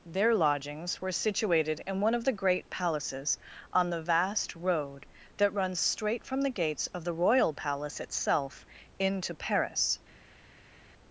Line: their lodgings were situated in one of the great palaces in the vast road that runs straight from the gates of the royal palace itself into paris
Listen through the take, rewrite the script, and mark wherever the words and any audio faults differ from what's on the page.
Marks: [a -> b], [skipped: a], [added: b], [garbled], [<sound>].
their lodgings were situated in one of the great palaces [in -> on] the vast road that runs straight from the gates of the royal palace itself into paris